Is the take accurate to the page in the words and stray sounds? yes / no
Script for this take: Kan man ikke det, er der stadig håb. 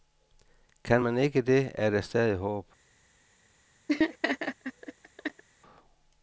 no